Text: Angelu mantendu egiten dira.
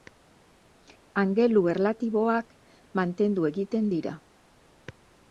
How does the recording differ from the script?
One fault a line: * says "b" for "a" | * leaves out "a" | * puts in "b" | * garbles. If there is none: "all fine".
* puts in "erlatiboak"